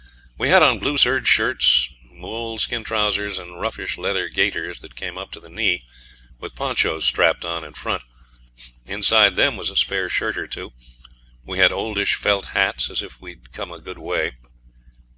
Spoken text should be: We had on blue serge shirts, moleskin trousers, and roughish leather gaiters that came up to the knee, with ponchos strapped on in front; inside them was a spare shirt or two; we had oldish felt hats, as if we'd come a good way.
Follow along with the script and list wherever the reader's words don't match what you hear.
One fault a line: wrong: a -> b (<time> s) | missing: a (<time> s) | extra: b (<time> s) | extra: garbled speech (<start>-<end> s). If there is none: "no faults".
no faults